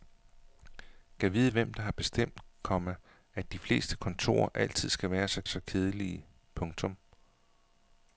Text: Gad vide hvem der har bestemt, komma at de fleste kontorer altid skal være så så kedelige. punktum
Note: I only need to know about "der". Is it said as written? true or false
true